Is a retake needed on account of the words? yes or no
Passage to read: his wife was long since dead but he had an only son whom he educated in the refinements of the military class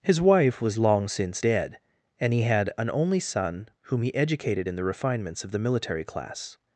yes